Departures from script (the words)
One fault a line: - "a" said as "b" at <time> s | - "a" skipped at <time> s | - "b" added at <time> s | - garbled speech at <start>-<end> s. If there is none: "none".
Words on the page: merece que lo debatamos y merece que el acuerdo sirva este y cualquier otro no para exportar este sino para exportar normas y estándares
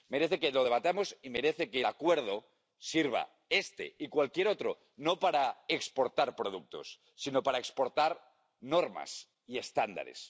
- "este" said as "productos" at 6.3 s